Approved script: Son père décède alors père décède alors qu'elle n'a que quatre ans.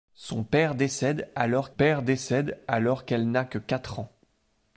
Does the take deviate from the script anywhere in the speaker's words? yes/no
no